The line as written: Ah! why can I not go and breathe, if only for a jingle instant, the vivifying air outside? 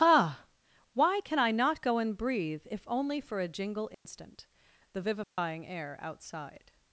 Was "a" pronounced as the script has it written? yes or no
yes